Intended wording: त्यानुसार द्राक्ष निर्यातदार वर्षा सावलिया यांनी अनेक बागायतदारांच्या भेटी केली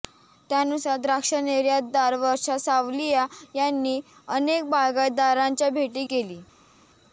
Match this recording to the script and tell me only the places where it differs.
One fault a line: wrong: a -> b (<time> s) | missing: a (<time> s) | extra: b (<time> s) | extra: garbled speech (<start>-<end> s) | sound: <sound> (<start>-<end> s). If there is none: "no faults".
no faults